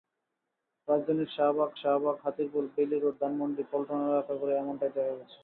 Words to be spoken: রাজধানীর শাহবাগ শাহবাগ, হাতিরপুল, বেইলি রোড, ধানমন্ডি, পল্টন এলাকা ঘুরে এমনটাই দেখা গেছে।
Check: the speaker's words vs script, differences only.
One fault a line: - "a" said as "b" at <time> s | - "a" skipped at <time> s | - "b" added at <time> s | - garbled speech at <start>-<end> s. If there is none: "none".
none